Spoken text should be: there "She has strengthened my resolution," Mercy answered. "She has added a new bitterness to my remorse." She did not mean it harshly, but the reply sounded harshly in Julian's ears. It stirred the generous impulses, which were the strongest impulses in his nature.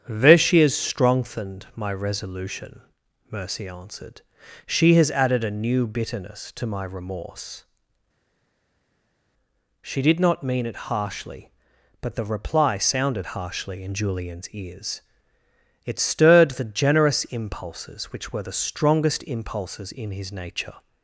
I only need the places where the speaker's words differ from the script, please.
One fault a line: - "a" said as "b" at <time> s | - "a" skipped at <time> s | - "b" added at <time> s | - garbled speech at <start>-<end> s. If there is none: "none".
none